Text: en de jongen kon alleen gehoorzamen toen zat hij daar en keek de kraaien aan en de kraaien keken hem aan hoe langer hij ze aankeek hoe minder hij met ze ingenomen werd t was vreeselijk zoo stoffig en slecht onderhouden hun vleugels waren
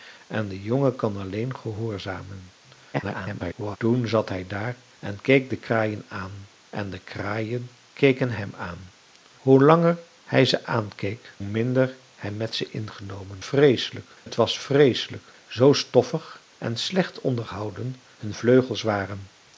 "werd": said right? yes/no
no